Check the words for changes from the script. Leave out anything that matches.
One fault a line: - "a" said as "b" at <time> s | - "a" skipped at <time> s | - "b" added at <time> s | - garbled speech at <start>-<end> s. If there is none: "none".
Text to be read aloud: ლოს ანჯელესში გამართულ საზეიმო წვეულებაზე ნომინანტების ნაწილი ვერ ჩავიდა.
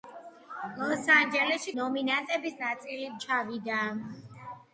- "გამართულ საზეიმო წვეულებაზე" skipped at 1.7 s
- "ვერ" skipped at 3.1 s